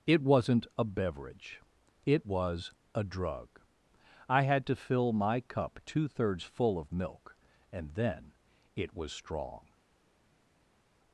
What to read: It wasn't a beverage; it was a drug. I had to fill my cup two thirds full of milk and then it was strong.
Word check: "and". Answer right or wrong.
right